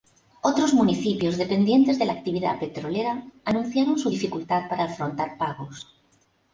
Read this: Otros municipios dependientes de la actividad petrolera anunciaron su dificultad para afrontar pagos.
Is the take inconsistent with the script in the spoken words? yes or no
no